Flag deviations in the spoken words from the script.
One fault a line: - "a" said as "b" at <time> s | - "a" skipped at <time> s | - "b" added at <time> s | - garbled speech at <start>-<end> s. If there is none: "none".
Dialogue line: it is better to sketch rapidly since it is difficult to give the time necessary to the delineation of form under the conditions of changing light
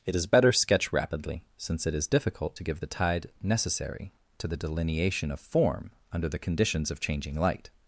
- "to" skipped at 0.5 s
- "time" said as "tide" at 2.9 s